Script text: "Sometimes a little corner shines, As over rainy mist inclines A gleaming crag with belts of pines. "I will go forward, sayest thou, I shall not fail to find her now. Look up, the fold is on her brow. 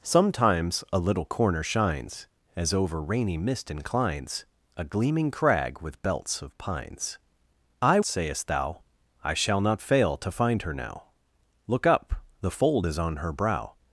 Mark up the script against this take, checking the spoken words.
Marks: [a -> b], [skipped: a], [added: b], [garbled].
"Sometimes a little corner shines, As over rainy mist inclines A gleaming crag with belts of pines. "I [skipped: will go forward,] sayest thou, I shall not fail to find her now. Look up, the fold is on her brow.